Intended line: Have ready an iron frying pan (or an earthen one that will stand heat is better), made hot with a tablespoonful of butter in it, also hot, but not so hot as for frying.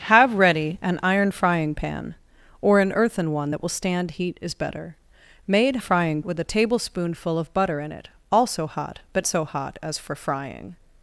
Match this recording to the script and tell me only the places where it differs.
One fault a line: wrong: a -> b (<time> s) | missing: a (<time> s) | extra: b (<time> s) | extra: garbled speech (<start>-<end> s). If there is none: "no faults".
wrong: hot -> frying (5.8 s)
missing: not (9.3 s)